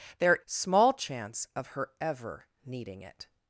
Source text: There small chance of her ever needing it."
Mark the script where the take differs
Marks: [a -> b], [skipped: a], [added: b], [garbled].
There small chance of her ever needing it."